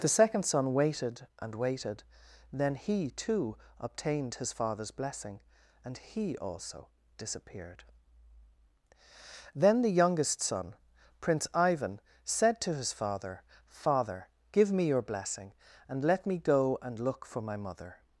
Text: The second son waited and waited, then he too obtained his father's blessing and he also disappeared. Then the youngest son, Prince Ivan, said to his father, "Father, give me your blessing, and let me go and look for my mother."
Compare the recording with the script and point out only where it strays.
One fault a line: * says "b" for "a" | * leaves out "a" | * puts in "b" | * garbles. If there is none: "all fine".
all fine